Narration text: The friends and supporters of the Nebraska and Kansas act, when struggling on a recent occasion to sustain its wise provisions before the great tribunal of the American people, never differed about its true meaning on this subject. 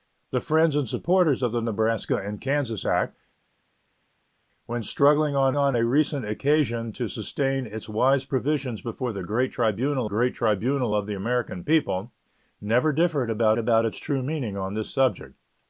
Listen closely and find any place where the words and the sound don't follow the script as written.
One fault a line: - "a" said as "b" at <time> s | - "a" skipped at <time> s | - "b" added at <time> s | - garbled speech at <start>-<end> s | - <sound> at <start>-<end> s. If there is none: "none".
- "on" added at 5.6 s
- "great tribunal" added at 10.0 s
- "about" added at 13.6 s